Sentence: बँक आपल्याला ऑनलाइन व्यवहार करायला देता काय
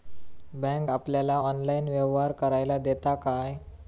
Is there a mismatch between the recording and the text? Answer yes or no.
no